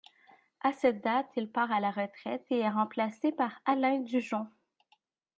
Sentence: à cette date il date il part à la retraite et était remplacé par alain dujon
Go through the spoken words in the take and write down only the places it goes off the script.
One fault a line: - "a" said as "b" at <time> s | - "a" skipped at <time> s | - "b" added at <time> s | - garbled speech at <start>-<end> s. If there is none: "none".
- "date il" skipped at 1.5 s
- "était" said as "est" at 2.6 s